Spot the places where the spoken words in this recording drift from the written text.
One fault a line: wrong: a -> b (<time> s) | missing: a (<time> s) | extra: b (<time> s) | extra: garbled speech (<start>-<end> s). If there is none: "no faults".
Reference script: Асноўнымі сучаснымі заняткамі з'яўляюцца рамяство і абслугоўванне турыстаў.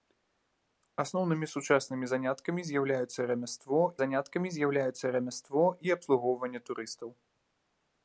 extra: заняткамі з'яўляюцца рамяство (4.0 s)